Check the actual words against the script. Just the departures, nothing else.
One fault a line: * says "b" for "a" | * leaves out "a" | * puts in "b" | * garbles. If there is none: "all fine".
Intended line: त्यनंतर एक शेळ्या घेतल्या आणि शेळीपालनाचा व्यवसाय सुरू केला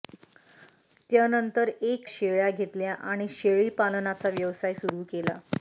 all fine